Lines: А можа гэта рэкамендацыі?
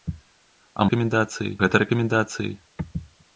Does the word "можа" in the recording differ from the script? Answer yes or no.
yes